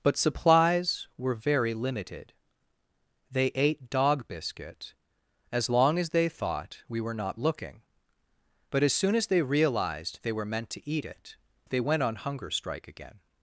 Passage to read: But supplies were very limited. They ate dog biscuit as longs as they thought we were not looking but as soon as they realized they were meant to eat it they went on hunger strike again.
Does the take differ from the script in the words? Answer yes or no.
yes